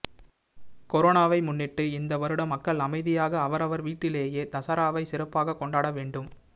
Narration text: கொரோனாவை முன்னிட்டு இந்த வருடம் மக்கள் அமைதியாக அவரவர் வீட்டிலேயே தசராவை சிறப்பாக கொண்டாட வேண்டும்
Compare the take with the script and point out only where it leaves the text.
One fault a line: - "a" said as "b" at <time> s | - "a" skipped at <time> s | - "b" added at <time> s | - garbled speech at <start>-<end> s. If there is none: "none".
none